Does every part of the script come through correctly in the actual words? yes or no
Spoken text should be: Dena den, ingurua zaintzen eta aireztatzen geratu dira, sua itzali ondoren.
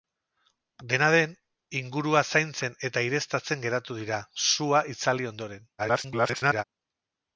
no